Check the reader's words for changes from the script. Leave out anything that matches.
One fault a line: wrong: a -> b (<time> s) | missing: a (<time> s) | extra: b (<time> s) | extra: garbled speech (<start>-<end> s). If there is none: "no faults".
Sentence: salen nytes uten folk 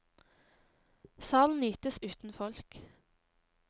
no faults